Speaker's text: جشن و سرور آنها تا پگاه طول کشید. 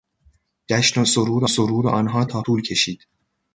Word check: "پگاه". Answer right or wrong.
wrong